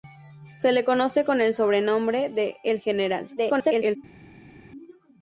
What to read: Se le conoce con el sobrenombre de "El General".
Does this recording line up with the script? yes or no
no